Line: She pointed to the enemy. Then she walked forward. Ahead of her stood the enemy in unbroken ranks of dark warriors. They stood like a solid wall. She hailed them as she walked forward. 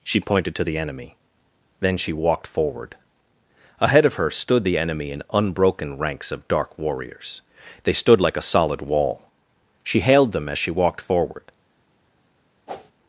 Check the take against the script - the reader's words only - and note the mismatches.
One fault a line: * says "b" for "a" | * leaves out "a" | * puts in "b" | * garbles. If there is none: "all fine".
all fine